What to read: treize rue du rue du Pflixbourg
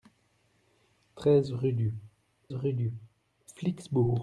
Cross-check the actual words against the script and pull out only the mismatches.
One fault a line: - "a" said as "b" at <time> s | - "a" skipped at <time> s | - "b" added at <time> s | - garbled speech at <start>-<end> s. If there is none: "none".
none